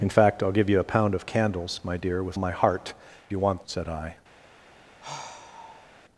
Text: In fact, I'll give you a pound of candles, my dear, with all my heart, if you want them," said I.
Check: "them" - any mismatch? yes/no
yes